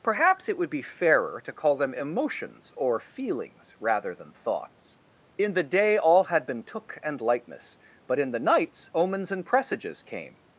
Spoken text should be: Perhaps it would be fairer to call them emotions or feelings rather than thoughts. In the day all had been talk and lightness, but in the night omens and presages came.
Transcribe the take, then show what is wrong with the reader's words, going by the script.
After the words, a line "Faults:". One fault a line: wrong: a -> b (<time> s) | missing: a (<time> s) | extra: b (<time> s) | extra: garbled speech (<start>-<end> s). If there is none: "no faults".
Perhaps it would be fairer to call them emotions or feelings rather than thoughts. In the day all had been took and lightness, but in the nights omens and presages came.
Faults:
wrong: talk -> took (6.6 s)
wrong: night -> nights (8.4 s)